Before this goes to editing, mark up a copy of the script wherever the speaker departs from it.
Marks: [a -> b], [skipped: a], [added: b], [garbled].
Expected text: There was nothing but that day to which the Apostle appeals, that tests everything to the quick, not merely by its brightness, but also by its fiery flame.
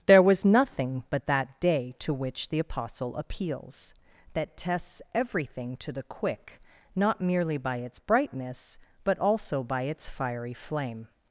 There was nothing but that day to which the Apostle appeals, that tests everything to the quick, not merely by its brightness, but also by its fiery flame.